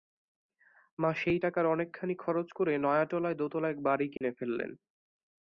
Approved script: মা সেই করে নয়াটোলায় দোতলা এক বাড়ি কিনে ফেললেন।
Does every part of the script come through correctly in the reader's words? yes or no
no